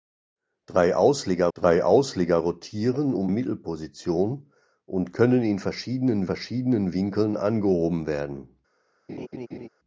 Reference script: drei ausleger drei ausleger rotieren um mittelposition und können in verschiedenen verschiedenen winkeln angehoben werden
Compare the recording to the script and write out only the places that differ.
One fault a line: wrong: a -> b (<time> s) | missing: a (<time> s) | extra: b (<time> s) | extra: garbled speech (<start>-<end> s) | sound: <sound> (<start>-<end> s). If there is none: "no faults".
sound: laugh (9.1-9.7 s)